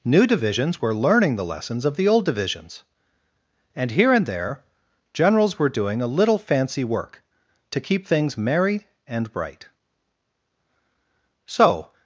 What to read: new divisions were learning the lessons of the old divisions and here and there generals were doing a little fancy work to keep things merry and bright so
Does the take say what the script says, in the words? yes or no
yes